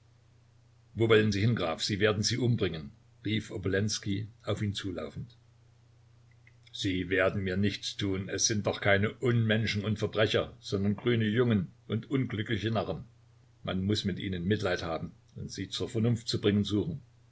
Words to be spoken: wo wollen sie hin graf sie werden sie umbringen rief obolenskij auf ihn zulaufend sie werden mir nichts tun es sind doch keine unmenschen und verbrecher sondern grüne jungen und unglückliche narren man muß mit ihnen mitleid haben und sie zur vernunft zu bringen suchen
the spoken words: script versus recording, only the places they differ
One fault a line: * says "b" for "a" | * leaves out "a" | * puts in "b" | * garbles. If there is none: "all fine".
all fine